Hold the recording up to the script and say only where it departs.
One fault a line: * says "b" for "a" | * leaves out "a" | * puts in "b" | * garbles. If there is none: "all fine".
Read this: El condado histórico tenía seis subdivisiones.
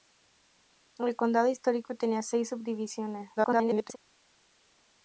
* garbles